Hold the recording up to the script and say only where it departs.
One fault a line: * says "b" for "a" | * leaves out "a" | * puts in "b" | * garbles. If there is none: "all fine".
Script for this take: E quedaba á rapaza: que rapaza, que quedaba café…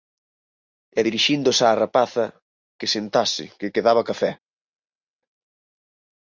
* says "dirixíndose" for "quedaba"
* says "sentase" for "rapaza"